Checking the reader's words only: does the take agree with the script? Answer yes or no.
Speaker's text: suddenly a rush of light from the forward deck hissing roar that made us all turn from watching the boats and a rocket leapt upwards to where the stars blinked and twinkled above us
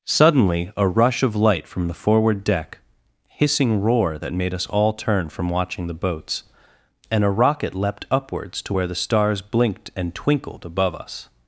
yes